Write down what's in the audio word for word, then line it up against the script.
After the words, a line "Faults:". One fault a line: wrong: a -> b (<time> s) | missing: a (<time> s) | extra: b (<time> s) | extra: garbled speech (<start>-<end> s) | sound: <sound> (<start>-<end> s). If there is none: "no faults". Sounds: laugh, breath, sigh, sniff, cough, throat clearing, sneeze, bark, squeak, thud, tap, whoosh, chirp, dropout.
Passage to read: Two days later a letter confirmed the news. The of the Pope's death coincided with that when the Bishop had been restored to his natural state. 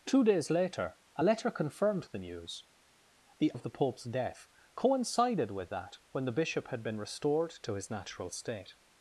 Two days later a letter confirmed the news. The of the Pope's death coincided with that when the Bishop had been restored to his natural state.
Faults:
no faults